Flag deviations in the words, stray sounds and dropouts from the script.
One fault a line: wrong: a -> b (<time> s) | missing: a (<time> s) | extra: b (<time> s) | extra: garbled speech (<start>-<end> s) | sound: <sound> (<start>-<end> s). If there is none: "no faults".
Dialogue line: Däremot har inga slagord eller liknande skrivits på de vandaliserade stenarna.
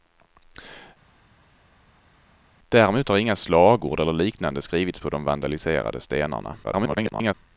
extra: garbled speech (6.6-7.3 s)